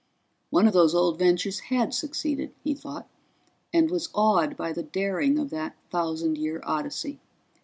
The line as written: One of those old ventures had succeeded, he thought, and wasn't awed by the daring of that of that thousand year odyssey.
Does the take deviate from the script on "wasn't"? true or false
true